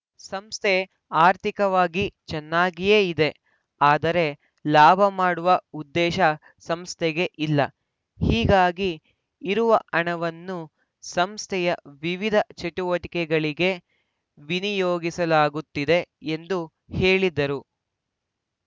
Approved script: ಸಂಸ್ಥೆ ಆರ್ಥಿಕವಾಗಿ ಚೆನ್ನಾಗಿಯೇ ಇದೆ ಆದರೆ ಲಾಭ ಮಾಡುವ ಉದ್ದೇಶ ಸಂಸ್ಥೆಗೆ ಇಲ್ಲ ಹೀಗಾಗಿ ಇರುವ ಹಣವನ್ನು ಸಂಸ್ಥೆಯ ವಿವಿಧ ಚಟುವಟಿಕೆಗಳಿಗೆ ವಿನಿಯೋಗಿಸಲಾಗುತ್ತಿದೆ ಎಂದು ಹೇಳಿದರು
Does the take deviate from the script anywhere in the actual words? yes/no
no